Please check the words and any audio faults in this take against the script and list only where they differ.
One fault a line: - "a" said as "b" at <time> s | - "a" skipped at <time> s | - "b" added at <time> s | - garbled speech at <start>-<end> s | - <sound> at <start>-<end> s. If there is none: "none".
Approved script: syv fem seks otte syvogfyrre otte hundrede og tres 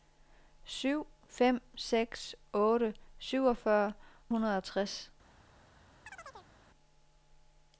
- "otte" skipped at 3.9 s
- chirp at 6.1-6.5 s